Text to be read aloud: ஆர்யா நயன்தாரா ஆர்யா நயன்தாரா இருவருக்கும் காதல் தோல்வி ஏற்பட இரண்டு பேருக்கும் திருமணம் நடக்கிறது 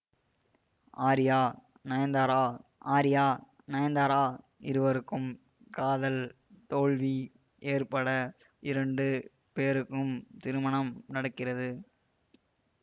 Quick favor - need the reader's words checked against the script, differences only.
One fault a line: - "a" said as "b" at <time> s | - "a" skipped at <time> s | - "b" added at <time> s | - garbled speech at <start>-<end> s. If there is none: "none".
none